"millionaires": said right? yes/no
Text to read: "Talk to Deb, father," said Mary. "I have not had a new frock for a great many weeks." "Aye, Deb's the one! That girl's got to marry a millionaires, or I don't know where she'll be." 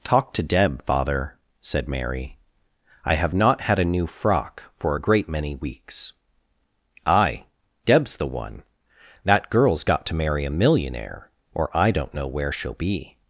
no